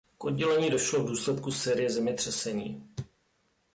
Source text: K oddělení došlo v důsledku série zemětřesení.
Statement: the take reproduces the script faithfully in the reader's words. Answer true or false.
true